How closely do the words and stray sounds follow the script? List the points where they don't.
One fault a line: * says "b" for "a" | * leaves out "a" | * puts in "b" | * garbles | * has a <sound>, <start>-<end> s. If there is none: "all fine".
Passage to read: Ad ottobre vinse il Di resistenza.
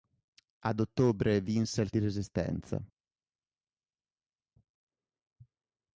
all fine